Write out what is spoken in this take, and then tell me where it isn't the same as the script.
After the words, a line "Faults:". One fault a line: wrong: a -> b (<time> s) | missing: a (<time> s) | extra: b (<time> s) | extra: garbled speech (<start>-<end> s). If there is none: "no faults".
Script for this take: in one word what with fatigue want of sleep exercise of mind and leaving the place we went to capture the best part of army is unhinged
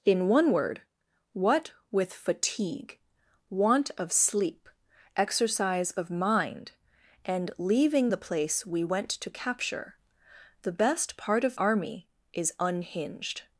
in one word what with fatigue want of sleep exercise of mind and leaving the place we went to capture the best part of army is unhinged
Faults:
no faults